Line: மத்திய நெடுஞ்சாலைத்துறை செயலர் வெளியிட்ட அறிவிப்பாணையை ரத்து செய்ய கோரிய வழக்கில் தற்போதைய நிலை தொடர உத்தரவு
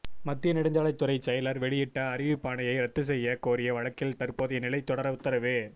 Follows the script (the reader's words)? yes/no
yes